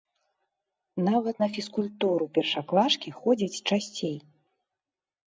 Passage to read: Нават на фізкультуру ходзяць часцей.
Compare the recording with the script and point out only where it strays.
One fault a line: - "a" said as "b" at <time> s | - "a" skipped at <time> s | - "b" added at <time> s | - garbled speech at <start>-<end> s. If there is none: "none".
- "першаклашкі" added at 2.4 s